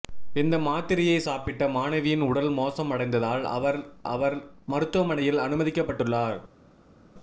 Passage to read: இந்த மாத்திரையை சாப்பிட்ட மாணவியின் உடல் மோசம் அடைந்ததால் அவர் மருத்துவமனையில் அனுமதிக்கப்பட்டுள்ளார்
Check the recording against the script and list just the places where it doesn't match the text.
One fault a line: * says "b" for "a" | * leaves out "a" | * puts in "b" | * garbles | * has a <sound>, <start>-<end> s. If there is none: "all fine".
* puts in "அவர்"